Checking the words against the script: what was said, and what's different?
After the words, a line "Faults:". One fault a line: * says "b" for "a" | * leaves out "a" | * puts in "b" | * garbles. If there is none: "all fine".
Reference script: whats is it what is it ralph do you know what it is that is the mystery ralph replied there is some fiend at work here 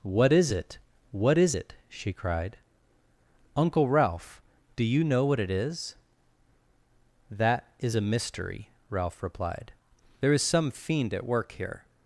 what is it what is it she cried uncle ralph do you know what it is that is a mystery ralph replied there is some fiend at work here
Faults:
* says "what" for "whats"
* puts in "she cried uncle"
* says "a" for "the"